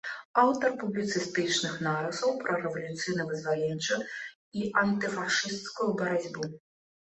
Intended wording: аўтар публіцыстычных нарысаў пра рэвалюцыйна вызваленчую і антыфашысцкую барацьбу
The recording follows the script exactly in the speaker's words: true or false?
true